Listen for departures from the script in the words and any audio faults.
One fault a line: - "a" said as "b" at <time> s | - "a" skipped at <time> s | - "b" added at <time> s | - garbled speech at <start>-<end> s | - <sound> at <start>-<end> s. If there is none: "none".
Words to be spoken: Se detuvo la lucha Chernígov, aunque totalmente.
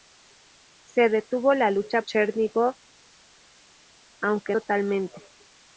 none